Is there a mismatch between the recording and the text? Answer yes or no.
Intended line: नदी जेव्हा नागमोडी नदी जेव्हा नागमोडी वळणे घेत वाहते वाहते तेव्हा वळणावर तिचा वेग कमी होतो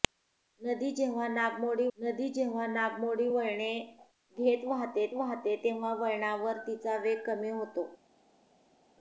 no